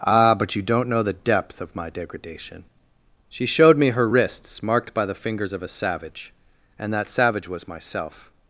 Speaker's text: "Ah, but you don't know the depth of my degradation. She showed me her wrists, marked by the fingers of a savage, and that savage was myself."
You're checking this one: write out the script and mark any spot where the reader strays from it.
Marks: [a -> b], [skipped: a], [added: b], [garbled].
"Ah, but you don't know the depth of my degradation. She showed me her wrists, marked by the fingers of a savage, and that savage was myself."